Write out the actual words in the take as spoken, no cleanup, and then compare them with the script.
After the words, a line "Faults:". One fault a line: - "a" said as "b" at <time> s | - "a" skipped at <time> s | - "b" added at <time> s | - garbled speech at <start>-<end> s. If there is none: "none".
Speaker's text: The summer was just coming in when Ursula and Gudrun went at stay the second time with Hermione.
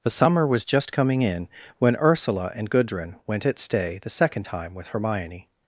The summer was just coming in when Ursula and Gudrun went at stay the second time with Hermione.
Faults:
none